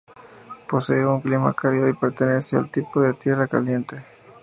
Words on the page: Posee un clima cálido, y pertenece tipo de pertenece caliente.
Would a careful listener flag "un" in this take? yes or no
no